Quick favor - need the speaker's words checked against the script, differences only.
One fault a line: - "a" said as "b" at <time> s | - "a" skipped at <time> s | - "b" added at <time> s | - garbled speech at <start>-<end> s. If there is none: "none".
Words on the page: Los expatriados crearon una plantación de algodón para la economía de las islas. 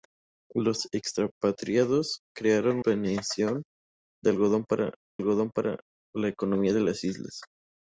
- "una" skipped at 2.8 s
- "algodón para" added at 5.2 s